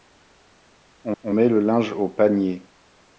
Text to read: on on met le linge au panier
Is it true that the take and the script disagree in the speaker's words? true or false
false